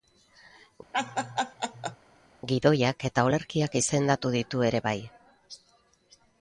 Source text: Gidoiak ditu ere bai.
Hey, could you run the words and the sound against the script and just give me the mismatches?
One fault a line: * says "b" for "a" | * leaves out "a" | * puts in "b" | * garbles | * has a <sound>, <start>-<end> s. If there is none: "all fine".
* has a laugh, 0.9-2.0 s
* puts in "eta olerkiak izendatu"